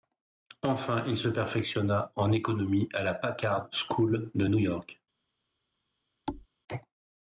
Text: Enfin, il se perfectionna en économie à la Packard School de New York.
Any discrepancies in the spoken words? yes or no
no